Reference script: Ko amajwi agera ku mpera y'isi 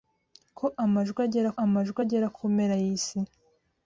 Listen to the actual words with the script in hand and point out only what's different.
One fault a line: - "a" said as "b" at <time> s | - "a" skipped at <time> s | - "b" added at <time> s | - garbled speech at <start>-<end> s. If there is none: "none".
- "amajwi agera" added at 1.6 s